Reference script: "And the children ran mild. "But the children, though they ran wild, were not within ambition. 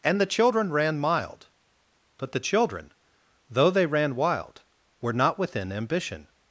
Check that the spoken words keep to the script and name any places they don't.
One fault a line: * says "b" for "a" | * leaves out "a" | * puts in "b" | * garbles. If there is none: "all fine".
all fine